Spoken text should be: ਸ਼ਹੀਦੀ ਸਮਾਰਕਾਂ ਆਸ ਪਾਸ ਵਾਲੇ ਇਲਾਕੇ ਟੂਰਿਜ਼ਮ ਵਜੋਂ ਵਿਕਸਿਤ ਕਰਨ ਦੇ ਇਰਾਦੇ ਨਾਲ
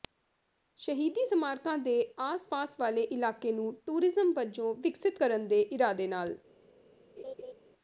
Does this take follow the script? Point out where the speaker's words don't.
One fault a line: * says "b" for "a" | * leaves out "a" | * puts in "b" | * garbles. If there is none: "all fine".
* puts in "ਦੇ"
* puts in "ਨੂੰ"